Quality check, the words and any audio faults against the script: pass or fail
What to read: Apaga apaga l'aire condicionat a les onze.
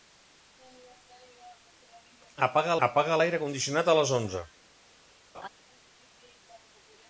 fail